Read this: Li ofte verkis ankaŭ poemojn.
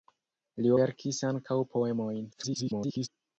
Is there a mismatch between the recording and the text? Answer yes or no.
yes